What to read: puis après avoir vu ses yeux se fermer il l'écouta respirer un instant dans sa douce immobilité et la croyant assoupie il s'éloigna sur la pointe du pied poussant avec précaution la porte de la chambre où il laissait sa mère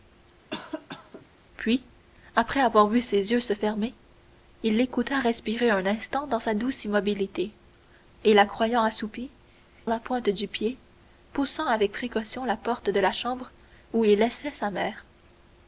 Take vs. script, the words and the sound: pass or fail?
fail